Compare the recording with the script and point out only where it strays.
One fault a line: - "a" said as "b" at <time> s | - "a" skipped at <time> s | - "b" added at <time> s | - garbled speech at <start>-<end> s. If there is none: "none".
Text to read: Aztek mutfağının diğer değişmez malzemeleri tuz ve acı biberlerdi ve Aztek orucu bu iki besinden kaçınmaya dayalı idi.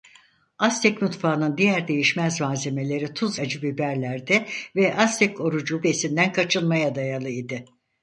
- "ve" skipped at 3.4 s
- "bu iki" skipped at 5.8 s